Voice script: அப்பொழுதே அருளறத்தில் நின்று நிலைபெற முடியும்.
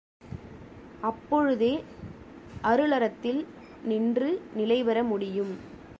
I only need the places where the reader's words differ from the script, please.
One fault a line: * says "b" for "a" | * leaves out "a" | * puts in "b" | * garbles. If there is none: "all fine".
all fine